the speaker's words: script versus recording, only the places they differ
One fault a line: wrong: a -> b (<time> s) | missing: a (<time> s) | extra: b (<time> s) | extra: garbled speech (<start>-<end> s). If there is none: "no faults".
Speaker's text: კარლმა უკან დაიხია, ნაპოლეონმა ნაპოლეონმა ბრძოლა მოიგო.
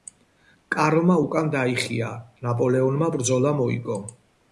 missing: ნაპოლეონმა (3.1 s)